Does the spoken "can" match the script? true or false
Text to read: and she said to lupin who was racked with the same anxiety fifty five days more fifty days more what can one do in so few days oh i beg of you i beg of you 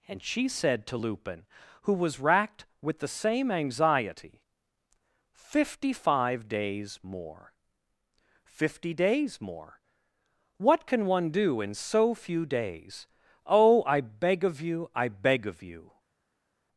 true